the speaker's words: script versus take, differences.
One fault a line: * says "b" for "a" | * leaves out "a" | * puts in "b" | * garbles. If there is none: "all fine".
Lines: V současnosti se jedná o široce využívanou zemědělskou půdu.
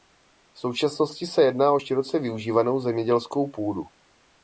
all fine